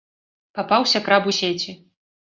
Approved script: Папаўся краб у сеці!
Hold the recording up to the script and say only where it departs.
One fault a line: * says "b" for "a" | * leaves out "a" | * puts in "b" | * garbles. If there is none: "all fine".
all fine